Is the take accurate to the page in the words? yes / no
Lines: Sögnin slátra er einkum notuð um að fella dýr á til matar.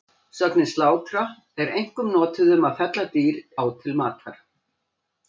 yes